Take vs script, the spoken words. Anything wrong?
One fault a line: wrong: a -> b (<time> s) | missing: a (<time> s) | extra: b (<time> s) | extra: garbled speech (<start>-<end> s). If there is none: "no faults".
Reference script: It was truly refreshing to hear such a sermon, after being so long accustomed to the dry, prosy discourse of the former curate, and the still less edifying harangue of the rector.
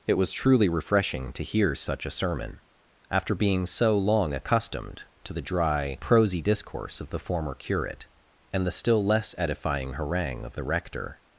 no faults